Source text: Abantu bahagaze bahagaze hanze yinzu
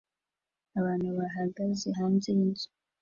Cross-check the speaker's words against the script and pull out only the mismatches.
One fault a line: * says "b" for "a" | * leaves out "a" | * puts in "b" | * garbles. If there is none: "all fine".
* leaves out "bahagaze"